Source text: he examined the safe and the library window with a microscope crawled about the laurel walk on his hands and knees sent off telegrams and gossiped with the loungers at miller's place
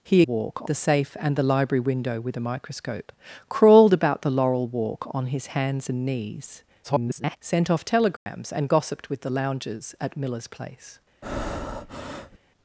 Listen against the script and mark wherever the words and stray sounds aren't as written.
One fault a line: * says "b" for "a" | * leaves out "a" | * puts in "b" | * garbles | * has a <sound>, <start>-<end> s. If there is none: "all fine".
* says "walk" for "examined"
* garbles
* has a dropout, 8.2-8.3 s
* has a breath, 11.2-12.4 s